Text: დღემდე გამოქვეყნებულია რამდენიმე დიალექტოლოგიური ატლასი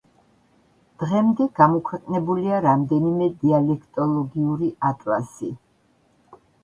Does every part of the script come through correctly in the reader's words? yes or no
yes